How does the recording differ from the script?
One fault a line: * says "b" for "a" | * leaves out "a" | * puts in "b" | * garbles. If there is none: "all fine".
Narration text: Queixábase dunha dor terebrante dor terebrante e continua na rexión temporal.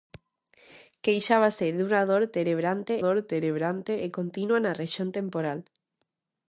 all fine